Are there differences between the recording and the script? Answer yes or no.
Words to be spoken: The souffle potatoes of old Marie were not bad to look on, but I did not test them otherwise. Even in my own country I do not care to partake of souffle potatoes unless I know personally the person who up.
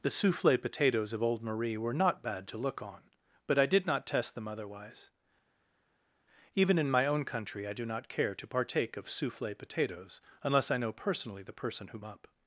no